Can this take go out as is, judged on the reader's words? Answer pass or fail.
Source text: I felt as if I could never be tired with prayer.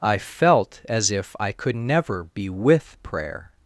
fail